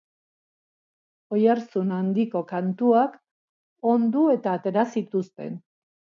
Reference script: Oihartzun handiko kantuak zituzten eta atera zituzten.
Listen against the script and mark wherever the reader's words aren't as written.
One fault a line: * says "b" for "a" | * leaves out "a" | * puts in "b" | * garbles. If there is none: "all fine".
* says "ondu" for "zituzten"